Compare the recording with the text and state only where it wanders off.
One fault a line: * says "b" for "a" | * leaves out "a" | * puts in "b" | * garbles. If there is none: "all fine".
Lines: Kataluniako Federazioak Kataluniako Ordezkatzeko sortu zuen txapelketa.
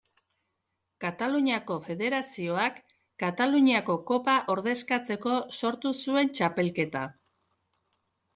* puts in "Kopa"